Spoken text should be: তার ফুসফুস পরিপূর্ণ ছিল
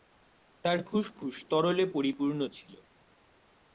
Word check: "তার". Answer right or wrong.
right